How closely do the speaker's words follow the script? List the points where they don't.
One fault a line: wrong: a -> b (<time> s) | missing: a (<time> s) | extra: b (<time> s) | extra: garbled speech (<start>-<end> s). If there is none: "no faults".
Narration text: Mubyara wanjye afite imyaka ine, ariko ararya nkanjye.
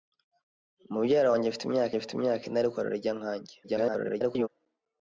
extra: afite imyaka (2.0 s)
extra: garbled speech (3.6-4.5 s)